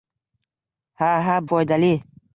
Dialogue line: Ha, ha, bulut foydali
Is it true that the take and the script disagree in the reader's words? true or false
true